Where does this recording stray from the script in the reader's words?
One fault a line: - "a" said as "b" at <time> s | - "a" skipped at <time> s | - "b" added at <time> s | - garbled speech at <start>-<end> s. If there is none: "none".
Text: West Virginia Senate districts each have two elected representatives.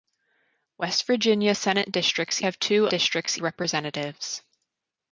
- "each" skipped at 2.4 s
- "elected" said as "districts" at 2.9 s